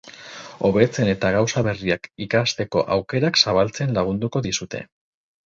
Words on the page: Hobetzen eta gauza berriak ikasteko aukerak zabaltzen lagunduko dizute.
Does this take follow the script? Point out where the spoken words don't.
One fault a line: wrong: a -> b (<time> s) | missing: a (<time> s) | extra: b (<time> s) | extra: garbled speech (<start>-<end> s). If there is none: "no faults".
no faults